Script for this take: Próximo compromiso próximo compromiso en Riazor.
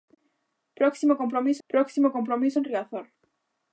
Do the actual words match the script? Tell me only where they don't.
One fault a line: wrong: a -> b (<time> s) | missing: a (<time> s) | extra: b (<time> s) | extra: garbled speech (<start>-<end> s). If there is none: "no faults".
no faults